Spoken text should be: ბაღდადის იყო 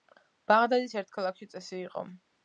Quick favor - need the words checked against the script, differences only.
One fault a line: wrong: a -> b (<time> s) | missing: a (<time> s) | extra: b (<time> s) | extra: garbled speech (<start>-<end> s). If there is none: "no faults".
extra: ერთ ქალაქში წესი (1.0 s)